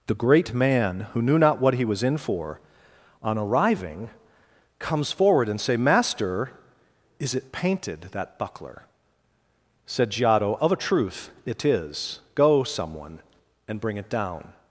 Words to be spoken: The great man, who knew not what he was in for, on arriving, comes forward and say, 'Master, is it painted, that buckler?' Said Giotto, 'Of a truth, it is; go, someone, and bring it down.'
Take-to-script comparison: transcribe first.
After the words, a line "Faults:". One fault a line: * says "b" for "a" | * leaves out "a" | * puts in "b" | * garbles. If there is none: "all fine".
The great man, who knew not what he was in for, on arriving, comes forward and say, 'Master, is it painted, that buckler?' Said Giotto, 'Of a truth, it is; go, someone, and bring it down.'
Faults:
all fine